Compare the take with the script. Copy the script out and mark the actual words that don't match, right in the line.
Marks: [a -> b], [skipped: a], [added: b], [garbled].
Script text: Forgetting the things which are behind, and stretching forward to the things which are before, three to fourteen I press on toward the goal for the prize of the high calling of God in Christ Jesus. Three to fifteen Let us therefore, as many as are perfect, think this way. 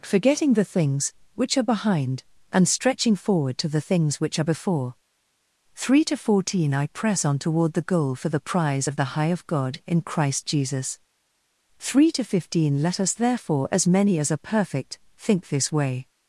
Forgetting the things which are behind, and stretching forward to the things which are before, three to fourteen I press on toward the goal for the prize of the high [skipped: calling] of God in Christ Jesus. Three to fifteen Let us therefore, as many as are perfect, think this way.